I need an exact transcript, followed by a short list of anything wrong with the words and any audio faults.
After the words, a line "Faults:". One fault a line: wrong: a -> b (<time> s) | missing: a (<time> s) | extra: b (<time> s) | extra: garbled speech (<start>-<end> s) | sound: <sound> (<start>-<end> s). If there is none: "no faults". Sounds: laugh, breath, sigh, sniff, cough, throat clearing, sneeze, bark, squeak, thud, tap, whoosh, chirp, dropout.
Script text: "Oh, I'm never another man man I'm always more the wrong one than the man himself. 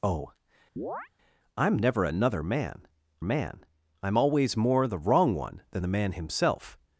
"Oh, I'm never another man man I'm always more the wrong one than the man himself.
Faults:
sound: chirp (0.8-1.1 s)